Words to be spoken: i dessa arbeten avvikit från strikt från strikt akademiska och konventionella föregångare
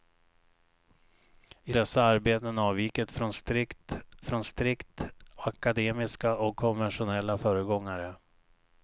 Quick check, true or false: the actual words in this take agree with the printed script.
true